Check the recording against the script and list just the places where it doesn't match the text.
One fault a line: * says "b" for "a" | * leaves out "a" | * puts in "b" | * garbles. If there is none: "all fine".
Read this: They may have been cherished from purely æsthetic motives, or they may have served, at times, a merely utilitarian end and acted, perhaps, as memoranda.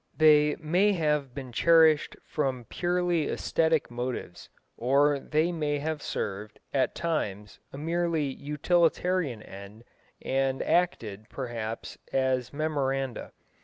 all fine